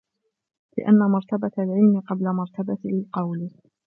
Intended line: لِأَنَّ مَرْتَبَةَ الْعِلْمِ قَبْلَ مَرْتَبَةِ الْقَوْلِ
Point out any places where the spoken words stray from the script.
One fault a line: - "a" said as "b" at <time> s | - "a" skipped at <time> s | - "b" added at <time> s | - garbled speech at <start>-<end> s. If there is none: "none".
none